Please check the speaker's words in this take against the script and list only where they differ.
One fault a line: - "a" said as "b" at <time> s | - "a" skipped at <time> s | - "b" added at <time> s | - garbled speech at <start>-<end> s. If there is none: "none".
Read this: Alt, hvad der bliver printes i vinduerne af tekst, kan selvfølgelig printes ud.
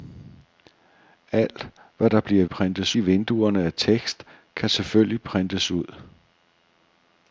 none